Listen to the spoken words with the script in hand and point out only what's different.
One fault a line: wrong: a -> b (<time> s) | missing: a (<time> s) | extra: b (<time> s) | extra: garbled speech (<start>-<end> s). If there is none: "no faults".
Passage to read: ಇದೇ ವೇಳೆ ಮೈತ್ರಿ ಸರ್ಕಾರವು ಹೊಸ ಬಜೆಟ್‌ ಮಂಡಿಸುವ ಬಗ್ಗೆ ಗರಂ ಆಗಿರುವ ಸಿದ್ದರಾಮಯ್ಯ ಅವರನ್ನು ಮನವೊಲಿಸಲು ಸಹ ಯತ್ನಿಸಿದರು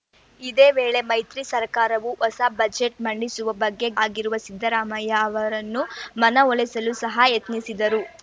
missing: ಗರಂ (3.9 s)